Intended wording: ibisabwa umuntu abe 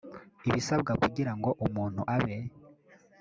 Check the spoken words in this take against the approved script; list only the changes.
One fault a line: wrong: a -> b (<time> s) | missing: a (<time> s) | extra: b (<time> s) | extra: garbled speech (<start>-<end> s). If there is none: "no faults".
extra: kugira ngo (1.0 s)